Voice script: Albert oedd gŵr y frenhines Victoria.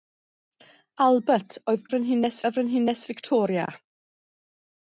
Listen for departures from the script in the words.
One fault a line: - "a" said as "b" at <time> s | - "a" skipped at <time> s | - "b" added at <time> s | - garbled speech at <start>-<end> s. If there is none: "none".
- "gŵr" said as "frenhines" at 1.9 s